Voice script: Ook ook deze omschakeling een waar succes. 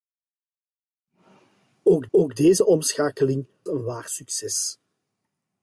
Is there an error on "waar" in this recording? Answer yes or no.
no